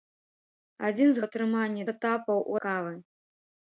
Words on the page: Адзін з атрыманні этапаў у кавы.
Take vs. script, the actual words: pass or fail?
pass